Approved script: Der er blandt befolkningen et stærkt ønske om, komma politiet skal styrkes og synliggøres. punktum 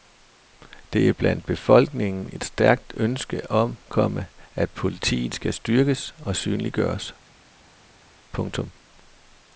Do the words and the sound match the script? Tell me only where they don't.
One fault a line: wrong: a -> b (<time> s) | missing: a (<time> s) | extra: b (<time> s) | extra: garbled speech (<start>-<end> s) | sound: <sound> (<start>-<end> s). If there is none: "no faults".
extra: at (4.5 s)